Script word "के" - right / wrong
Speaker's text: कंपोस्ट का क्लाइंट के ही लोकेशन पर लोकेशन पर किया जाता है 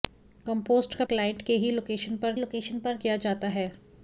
right